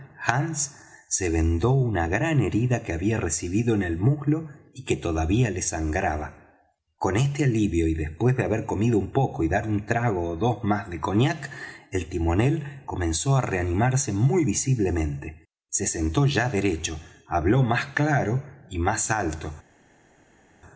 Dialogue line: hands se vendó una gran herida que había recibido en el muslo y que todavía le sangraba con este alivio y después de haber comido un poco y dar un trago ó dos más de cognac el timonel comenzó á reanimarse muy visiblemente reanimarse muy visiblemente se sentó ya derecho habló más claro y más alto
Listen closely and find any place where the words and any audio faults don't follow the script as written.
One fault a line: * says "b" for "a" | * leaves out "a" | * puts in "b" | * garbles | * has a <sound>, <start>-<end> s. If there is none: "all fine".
* leaves out "reanimarse muy visiblemente"